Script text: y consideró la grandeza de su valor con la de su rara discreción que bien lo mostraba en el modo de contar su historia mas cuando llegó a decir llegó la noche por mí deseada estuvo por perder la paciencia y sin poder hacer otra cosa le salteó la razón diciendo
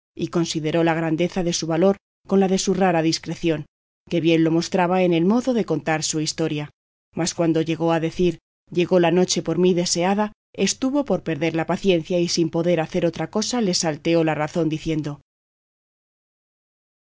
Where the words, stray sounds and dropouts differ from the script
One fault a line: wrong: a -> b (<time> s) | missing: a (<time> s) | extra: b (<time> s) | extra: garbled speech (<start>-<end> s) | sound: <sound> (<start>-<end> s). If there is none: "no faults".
no faults